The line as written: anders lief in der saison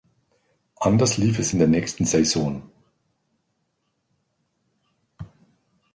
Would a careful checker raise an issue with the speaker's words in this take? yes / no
yes